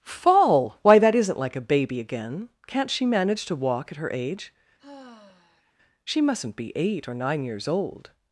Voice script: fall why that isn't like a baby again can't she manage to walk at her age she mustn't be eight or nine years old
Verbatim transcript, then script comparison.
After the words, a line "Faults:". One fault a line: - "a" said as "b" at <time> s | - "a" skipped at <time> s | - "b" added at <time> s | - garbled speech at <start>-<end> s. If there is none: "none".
fall why that isn't like a baby again can't she manage to walk at her age she mustn't be eight or nine years old
Faults:
none